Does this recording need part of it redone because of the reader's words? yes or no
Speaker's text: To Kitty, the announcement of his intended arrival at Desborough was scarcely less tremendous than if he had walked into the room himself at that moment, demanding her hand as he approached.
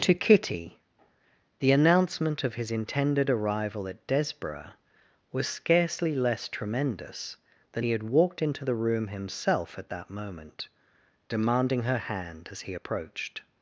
yes